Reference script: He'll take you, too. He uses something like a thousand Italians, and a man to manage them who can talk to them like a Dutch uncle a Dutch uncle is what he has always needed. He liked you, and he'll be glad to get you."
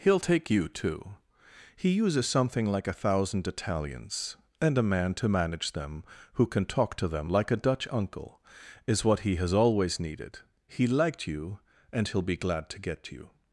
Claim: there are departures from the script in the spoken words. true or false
true